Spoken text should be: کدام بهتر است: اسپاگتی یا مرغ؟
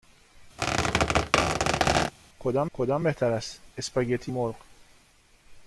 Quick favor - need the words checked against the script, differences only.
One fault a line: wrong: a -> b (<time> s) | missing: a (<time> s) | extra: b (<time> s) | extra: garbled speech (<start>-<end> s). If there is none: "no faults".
extra: کدام (2.7 s)
missing: یا (4.3 s)